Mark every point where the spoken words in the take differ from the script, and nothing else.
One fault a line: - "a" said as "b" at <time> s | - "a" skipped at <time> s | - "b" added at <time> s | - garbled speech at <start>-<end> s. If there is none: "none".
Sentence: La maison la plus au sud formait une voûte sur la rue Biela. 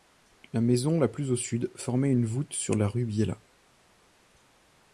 none